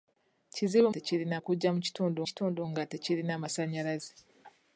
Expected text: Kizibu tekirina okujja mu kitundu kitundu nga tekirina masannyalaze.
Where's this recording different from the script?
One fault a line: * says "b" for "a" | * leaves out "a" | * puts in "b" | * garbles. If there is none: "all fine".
all fine